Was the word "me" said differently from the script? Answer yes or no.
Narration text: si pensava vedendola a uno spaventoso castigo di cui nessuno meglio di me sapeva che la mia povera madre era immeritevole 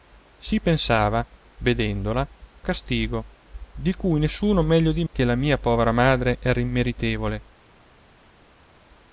yes